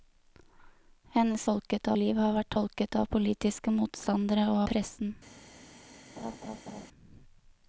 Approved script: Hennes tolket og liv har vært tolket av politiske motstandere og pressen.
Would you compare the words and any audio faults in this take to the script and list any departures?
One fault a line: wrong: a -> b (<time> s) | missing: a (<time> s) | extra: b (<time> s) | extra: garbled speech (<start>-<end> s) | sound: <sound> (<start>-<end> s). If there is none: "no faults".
sound: laugh (6.2-6.9 s)